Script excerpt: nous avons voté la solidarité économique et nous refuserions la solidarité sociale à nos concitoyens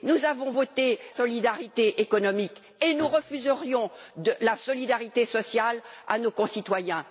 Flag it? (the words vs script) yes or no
yes